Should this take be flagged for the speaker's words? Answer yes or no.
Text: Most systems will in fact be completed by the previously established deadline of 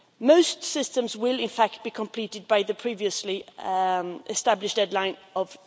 no